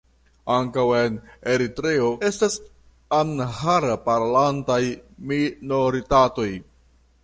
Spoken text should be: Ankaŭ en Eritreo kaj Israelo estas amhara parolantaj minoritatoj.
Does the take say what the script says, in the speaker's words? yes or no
no